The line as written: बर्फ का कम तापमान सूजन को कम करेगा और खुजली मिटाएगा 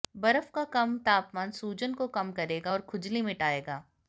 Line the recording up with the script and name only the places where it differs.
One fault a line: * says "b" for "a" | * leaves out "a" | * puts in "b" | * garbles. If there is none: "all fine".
all fine